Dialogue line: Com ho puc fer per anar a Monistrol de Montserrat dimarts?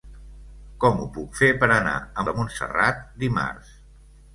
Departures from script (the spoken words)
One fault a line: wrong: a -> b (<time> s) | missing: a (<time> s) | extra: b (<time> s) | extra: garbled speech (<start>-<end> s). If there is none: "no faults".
missing: Monistrol (2.3 s)